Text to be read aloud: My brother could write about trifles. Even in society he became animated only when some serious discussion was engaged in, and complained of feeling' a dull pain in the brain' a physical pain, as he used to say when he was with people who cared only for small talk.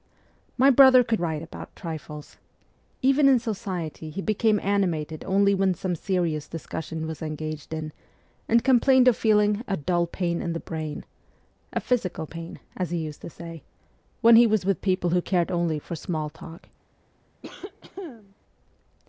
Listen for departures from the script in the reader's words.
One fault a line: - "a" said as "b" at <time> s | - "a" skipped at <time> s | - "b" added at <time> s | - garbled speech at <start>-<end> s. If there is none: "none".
none